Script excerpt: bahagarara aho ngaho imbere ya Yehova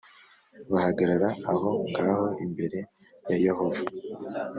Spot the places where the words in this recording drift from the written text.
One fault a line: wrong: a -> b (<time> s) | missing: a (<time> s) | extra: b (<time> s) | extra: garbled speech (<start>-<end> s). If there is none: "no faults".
no faults